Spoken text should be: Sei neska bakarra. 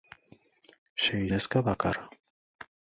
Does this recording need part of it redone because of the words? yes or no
no